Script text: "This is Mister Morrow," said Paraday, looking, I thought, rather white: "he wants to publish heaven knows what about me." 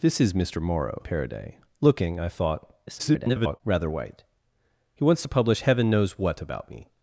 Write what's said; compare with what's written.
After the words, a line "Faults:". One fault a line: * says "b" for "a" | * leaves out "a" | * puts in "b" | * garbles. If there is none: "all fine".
"This is Mister Morrow," Paraday, looking, I thought, [garbled] rather white: "he wants to publish heaven knows what about me."
Faults:
* leaves out "said"
* garbles